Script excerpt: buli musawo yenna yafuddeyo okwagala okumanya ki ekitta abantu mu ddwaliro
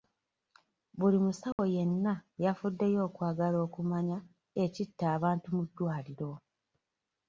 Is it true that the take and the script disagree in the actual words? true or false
true